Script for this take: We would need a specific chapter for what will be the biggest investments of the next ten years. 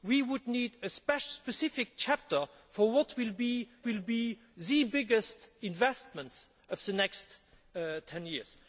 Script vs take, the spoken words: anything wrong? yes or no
yes